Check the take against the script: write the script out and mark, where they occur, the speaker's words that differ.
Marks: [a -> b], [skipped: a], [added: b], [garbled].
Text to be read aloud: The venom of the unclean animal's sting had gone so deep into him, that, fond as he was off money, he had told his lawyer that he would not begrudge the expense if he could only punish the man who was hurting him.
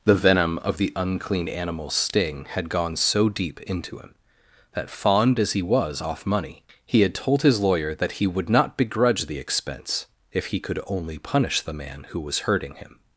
The venom of the unclean animal's sting had gone so deep into him, that, fond as he was off money, he had told his lawyer that he would not begrudge the expense if he could only punish the man who was hurting him.